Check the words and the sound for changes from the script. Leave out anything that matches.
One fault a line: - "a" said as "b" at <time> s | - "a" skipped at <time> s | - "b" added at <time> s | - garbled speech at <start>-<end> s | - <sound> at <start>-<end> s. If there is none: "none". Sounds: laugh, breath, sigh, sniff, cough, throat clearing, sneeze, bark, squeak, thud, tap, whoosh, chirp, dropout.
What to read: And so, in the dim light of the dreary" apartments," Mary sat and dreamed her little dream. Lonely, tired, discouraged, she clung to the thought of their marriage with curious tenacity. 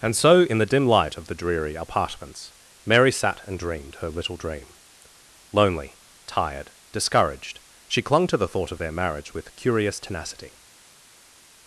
none